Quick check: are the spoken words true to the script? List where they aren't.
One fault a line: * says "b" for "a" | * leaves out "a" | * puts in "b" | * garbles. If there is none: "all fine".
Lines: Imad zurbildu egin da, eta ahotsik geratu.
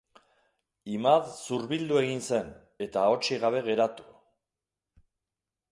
* says "zen" for "da"
* puts in "gabe"